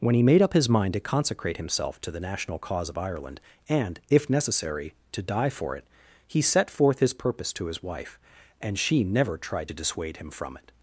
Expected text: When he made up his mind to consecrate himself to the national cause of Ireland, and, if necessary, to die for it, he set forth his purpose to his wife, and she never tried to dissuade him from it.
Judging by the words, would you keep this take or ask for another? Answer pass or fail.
pass